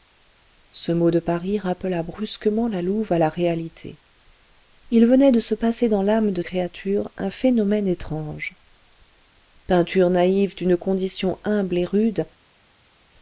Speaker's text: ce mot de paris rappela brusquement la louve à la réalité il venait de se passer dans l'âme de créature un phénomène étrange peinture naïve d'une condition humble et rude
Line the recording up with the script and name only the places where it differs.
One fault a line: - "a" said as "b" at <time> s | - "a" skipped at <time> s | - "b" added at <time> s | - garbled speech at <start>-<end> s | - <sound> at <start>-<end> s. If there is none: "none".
none